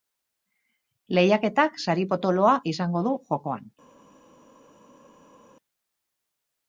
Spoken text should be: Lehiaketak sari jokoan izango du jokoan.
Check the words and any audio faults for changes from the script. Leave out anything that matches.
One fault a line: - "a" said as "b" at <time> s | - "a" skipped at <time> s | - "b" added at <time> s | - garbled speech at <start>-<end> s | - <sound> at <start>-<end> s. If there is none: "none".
- "jokoan" said as "potoloa" at 2.1 s